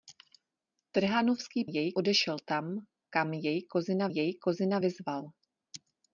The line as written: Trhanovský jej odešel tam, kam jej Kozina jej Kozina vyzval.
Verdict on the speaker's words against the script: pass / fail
pass